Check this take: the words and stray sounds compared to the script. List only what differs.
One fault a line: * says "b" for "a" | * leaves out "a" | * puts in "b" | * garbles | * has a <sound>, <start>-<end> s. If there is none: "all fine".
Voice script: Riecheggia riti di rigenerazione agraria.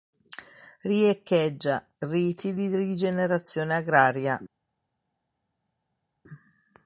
all fine